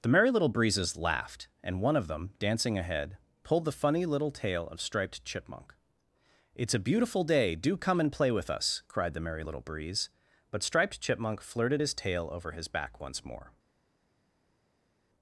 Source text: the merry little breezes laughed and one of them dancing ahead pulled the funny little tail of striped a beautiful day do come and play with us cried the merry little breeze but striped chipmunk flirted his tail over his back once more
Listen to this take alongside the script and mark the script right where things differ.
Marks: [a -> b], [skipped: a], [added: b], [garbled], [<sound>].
the merry little breezes laughed and one of them dancing ahead pulled the funny little tail of striped [added: chipmunk it's] a beautiful day do come and play with us cried the merry little breeze but striped chipmunk flirted his tail over his back once more